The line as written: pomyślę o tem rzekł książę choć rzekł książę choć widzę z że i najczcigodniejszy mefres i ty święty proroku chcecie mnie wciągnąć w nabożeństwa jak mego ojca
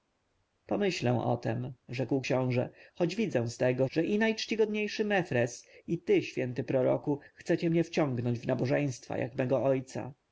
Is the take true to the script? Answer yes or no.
no